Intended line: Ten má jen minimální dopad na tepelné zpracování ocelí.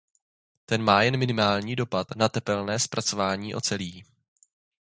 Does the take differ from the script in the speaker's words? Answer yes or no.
no